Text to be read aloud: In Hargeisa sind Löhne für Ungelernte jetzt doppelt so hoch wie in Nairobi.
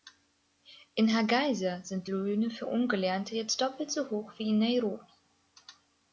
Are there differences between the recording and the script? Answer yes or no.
no